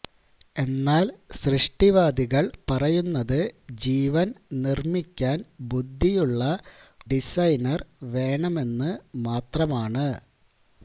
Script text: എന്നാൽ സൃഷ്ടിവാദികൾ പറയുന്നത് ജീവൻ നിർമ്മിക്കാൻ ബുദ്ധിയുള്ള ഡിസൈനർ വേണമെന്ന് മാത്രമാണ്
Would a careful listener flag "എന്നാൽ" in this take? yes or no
no